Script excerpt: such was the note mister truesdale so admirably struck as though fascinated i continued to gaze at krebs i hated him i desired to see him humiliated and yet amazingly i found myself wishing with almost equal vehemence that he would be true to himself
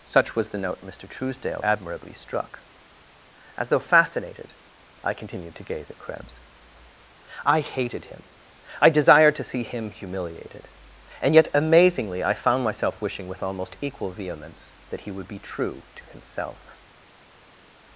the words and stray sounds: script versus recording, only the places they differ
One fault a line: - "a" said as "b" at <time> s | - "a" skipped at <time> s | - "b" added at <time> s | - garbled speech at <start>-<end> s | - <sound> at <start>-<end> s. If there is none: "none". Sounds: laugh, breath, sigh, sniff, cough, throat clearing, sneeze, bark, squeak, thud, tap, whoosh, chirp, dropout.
- "so" skipped at 1.6 s